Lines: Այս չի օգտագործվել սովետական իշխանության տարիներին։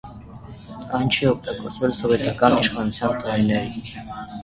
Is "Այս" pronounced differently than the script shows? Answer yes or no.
yes